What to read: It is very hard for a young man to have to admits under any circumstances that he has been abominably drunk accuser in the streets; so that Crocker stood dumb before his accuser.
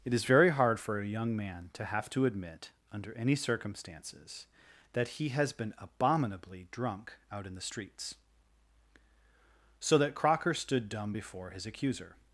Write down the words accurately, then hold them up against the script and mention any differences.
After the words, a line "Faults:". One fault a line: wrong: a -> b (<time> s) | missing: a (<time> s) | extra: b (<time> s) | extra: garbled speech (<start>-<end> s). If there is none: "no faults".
It is very hard for a young man to have to admit under any circumstances that he has been abominably drunk out in the streets; so that Crocker stood dumb before his accuser.
Faults:
wrong: admits -> admit (2.2 s)
wrong: accuser -> out (7.3 s)